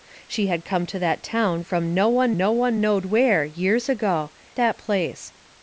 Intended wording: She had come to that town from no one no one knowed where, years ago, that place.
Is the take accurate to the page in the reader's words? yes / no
yes